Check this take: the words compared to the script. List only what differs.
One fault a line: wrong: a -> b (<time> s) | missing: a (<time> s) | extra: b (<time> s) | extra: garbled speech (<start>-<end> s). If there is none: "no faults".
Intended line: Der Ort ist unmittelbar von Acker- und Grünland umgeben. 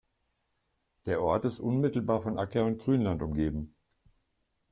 no faults